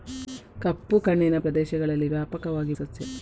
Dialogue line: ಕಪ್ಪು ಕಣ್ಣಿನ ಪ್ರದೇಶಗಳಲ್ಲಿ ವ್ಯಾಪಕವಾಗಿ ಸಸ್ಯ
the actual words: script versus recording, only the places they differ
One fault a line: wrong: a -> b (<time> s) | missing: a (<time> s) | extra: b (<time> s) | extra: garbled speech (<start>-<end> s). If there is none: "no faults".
no faults